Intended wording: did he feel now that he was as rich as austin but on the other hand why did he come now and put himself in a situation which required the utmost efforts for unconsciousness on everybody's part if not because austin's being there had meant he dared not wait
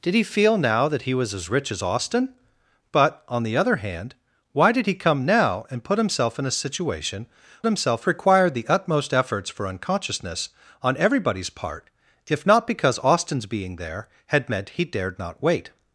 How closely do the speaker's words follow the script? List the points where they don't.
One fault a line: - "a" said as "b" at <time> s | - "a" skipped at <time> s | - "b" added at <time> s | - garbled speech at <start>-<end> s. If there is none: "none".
- "which" said as "himself" at 7.7 s